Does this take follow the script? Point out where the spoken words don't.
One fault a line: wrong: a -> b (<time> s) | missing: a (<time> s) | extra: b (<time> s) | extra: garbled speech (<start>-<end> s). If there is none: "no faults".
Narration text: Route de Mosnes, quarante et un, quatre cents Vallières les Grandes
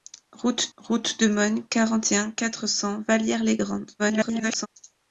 extra: route (0.8 s)
extra: garbled speech (4.0-4.7 s)